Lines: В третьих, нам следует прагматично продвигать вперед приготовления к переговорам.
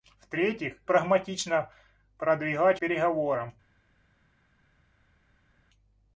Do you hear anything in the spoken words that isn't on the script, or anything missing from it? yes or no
yes